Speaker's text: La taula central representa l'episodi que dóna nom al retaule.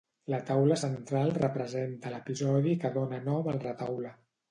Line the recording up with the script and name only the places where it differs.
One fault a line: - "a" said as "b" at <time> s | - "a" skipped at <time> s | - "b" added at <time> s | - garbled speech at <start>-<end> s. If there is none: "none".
none